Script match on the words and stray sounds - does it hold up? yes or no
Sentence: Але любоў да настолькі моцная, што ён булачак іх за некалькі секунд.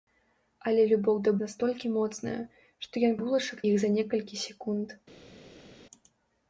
yes